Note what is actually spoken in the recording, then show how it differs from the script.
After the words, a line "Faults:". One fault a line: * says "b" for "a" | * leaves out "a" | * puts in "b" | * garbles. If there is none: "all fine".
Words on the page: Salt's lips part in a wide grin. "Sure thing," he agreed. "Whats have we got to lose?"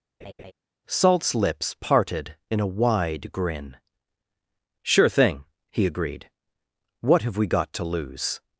Salt's lips parted in a wide grin. "Sure thing," he agreed. "What have we got to lose?"
Faults:
* says "parted" for "part"
* says "What" for "Whats"